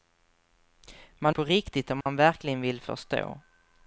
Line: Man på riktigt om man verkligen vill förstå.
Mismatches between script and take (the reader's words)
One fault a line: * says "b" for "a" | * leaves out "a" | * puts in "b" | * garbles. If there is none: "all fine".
all fine